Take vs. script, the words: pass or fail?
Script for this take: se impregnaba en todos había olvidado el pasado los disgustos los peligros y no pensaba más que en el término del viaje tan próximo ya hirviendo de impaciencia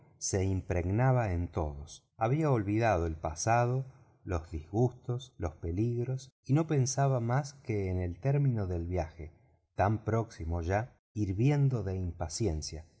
pass